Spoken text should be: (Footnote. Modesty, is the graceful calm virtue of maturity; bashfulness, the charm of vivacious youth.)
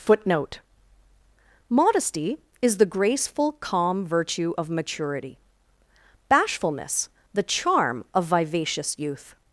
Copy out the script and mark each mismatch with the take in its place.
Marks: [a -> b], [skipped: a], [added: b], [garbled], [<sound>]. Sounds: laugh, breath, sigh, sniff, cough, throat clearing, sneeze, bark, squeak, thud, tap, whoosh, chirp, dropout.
(Footnote. Modesty, is the graceful calm virtue of maturity; bashfulness, the charm of vivacious youth.)